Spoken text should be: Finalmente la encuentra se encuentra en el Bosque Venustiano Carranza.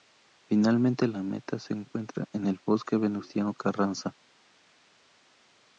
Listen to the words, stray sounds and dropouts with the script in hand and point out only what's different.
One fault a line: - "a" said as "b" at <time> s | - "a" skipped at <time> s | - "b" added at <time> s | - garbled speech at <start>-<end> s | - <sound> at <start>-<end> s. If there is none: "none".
- "encuentra" said as "meta" at 1.2 s